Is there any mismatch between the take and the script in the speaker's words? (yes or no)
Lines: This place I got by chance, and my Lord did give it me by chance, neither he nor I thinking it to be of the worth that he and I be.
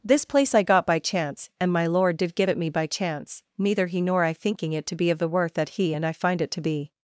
yes